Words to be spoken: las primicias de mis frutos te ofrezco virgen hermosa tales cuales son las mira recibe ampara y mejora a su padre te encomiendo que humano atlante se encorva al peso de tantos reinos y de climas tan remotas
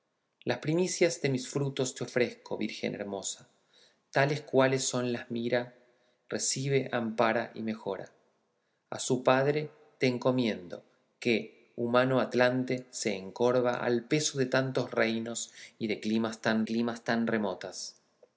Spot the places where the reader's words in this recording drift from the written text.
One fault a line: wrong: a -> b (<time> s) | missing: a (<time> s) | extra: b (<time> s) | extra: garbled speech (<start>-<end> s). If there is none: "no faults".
extra: climas tan (16.6 s)